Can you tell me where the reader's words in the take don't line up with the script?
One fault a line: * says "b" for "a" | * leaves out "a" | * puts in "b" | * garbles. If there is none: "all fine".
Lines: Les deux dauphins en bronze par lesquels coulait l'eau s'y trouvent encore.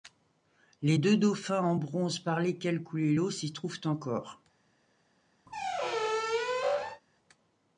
all fine